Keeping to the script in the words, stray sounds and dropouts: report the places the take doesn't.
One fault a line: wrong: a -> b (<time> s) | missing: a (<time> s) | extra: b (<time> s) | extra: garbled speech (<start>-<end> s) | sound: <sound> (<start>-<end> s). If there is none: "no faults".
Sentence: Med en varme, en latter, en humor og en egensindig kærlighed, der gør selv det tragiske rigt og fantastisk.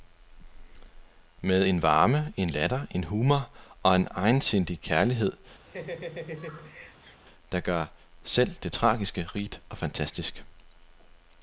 sound: laugh (5.7-7.2 s)